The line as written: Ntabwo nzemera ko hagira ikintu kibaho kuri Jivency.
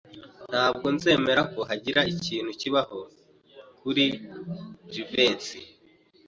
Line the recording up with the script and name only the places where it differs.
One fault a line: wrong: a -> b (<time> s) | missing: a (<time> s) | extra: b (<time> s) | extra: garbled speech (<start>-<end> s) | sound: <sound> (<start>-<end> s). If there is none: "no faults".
no faults